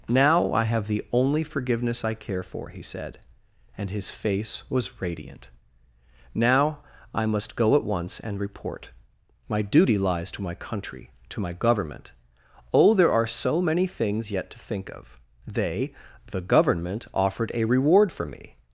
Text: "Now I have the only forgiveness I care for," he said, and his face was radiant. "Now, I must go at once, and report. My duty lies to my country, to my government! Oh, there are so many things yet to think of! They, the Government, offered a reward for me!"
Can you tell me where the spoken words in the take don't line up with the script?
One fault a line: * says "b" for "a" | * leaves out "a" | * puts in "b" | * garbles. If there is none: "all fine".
all fine